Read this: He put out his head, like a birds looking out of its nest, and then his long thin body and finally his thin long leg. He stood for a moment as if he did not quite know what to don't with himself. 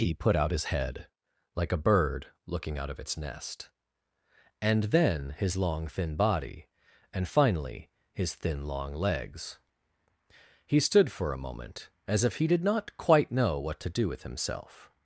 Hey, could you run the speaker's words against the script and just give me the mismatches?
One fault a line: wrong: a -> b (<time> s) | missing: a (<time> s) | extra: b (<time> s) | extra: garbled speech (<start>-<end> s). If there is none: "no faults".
wrong: birds -> bird (1.8 s)
wrong: leg -> legs (8.9 s)
wrong: don't -> do (13.9 s)